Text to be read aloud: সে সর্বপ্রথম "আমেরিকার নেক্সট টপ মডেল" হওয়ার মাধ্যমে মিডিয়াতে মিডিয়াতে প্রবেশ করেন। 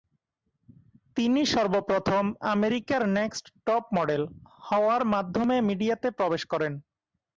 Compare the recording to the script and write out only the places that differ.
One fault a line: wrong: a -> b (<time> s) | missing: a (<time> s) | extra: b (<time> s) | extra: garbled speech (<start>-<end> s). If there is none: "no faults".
wrong: সে -> তিনি (1.2 s)
missing: মিডিয়াতে (6.1 s)